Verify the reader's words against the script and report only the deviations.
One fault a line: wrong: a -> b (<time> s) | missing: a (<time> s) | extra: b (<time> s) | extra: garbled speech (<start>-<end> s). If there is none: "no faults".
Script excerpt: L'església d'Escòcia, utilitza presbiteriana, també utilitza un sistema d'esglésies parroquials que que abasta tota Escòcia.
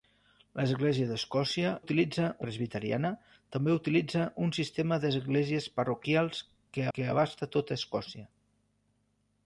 no faults